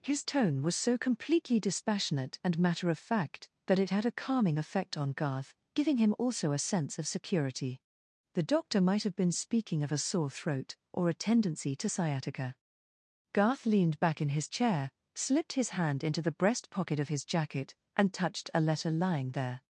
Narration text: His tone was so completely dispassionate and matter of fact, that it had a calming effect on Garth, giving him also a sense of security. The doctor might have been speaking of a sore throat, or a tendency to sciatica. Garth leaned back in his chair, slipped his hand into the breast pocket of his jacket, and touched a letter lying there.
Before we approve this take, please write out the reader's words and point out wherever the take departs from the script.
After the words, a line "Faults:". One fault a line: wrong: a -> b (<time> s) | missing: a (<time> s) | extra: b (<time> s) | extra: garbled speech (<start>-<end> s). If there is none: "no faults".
His tone was so completely dispassionate and matter of fact, that it had a calming effect on Garth, giving him also a sense of security. The doctor might have been speaking of a sore throat, or a tendency to sciatica. Garth leaned back in his chair, slipped his hand into the breast pocket of his jacket, and touched a letter lying there.
Faults:
no faults